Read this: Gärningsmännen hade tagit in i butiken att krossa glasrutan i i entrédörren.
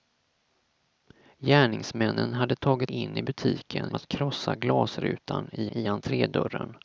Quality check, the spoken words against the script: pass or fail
pass